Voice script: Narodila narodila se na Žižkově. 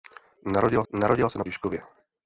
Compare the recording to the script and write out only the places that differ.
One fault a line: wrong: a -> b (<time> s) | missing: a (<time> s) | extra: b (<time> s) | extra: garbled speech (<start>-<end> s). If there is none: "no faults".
no faults